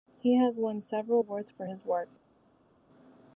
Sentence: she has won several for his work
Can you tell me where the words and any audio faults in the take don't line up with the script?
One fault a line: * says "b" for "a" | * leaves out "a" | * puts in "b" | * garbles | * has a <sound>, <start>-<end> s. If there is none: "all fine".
* says "he" for "she"
* puts in "awards"